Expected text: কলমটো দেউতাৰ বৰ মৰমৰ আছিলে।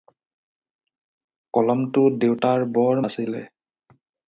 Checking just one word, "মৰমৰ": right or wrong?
wrong